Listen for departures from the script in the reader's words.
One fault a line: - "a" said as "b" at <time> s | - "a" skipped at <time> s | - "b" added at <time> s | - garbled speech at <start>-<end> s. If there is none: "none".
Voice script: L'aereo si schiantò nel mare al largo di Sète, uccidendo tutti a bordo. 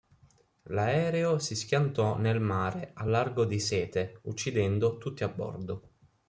none